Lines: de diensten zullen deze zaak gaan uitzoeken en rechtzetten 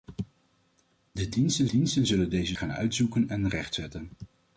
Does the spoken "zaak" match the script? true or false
false